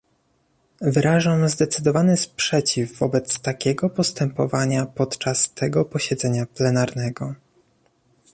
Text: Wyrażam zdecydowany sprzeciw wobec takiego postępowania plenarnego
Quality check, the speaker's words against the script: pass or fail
fail